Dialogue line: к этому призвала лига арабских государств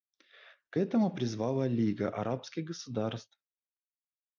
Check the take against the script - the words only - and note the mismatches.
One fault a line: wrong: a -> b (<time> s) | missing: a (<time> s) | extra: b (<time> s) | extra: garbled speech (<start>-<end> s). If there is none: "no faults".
no faults